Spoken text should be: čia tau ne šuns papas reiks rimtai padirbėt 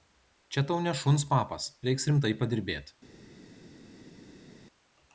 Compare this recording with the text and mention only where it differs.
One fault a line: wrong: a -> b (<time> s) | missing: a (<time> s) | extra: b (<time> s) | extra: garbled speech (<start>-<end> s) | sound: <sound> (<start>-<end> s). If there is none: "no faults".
no faults